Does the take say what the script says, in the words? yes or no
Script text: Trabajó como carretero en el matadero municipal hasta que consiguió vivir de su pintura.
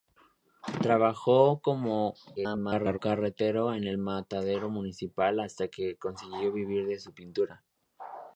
no